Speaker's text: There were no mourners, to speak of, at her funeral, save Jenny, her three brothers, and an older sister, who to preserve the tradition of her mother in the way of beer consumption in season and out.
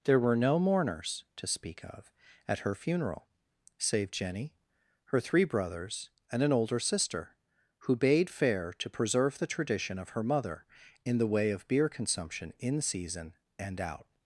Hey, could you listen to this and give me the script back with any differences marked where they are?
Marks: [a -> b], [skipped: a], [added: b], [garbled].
There were no mourners, to speak of, at her funeral, save Jenny, her three brothers, and an older sister, who [added: bade fair] to preserve the tradition of her mother in the way of beer consumption in season and out.